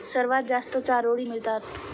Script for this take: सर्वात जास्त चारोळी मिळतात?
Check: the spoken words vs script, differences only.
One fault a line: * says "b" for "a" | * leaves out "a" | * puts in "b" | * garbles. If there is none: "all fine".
all fine